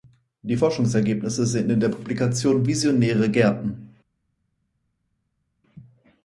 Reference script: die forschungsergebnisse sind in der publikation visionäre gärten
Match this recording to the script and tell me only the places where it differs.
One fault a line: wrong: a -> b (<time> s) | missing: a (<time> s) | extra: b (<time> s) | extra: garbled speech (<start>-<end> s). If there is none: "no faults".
no faults